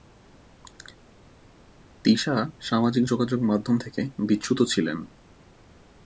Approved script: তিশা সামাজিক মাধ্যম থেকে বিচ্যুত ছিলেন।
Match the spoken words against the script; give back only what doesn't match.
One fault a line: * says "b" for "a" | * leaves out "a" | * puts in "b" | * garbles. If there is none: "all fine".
* puts in "যোগাযোগ"